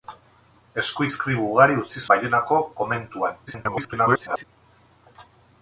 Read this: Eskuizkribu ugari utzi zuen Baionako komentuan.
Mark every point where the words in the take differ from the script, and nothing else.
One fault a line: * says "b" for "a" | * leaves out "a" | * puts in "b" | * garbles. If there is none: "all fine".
* leaves out "zuen"
* garbles